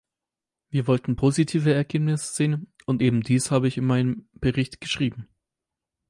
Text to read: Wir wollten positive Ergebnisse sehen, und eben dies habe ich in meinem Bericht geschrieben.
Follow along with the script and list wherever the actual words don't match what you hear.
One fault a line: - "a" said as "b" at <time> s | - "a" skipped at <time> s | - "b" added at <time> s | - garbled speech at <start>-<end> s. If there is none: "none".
none